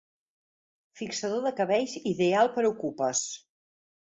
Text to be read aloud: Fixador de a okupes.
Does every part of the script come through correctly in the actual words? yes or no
no